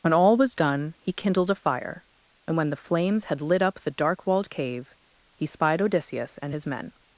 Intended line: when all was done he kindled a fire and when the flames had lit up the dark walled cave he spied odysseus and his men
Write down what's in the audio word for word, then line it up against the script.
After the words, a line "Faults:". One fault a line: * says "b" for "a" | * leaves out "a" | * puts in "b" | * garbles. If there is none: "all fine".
when all was done he kindled a fire and when the flames had lit up the dark walled cave he spied odysseus and his men
Faults:
all fine